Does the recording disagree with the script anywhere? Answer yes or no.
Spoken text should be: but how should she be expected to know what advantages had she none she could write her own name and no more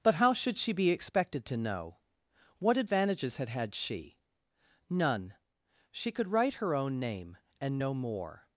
yes